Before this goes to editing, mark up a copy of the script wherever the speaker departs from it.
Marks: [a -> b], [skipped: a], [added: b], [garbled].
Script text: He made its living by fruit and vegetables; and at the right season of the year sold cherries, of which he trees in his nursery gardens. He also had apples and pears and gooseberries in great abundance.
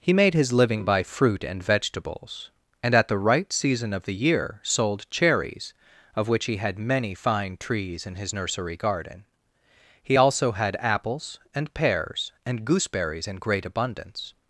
He made [its -> his] living by fruit and vegetables; and at the right season of the year sold cherries, of which he [added: had many fine] trees in his nursery [gardens. -> garden] He also had apples and pears and gooseberries in great abundance.